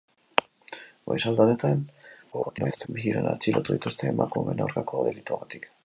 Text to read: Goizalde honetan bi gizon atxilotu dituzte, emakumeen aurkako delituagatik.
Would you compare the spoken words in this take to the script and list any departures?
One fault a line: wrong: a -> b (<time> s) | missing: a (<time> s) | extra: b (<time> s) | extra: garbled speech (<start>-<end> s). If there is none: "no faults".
extra: garbled speech (2.3-2.9 s)